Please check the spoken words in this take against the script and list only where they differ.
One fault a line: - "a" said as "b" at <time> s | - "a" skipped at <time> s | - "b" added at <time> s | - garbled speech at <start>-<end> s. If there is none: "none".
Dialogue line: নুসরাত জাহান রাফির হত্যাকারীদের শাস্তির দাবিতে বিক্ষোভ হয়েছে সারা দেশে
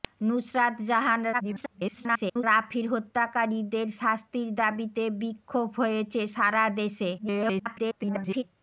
- garbled speech at 1.3-2.4 s
- garbled speech at 7.2-8.4 s